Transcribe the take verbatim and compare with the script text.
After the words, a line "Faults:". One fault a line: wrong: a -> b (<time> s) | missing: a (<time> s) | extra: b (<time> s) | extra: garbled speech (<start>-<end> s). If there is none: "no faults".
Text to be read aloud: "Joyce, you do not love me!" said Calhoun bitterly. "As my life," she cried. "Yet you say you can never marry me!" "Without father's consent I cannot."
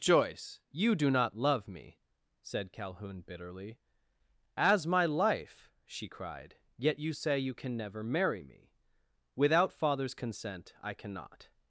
"Joyce, you do not love me!" said Calhoun bitterly. "As my life," she cried. "Yet you say you can never marry me!" "Without father's consent I cannot."
Faults:
no faults